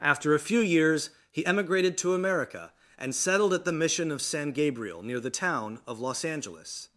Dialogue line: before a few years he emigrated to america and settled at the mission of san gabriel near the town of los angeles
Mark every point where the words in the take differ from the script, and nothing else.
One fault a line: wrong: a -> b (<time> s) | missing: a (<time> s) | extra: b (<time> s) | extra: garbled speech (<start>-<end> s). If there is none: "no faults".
wrong: before -> after (0.0 s)